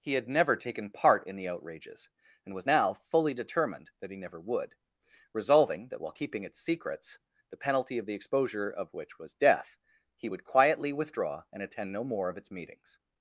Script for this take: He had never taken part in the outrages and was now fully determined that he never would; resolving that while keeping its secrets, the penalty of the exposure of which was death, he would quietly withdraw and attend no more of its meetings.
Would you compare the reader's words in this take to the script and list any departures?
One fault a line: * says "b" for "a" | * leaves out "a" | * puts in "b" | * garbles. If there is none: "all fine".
all fine